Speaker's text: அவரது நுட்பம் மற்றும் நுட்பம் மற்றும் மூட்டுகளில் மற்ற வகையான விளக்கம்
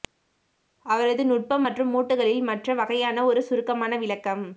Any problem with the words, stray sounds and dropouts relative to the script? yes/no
yes